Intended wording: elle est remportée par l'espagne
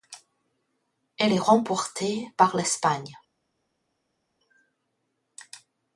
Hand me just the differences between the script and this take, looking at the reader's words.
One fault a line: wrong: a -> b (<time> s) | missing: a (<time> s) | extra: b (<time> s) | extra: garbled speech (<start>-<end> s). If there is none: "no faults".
no faults